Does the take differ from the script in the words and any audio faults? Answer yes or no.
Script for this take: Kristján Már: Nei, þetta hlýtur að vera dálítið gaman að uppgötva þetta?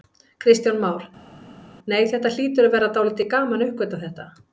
no